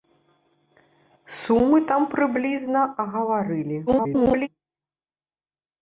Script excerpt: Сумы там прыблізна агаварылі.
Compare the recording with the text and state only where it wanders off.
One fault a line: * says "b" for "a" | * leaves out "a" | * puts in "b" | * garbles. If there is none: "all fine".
* garbles